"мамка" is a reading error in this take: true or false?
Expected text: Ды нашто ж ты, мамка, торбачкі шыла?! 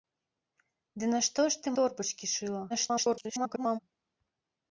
true